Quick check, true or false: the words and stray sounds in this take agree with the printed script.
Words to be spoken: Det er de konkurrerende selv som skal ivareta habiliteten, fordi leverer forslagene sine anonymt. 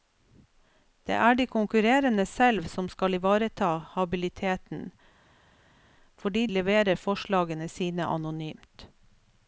true